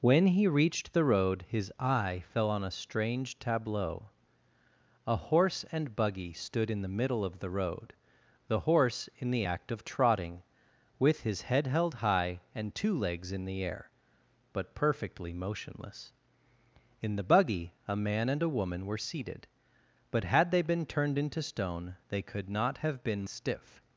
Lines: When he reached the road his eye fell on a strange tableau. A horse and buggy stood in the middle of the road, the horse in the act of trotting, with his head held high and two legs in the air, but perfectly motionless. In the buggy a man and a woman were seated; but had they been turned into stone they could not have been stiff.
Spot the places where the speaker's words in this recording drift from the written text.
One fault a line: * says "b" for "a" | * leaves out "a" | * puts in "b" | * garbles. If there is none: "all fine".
all fine